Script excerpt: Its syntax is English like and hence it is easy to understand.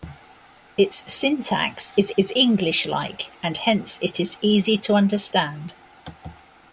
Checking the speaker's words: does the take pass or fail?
fail